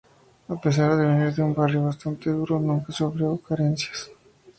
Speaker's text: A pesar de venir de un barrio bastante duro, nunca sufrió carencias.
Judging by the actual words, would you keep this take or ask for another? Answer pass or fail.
pass